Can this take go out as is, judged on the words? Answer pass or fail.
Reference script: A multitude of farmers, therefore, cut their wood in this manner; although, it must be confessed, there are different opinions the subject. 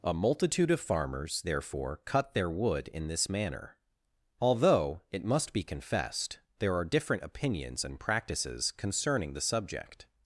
fail